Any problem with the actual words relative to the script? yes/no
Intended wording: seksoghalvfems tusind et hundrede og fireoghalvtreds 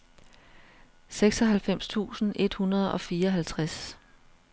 no